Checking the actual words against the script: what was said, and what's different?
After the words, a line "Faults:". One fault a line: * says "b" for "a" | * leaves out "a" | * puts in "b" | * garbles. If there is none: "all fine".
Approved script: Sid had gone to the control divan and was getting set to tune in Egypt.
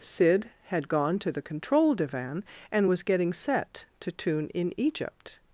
Sid had gone to the control divan and was getting set to tune in Egypt.
Faults:
all fine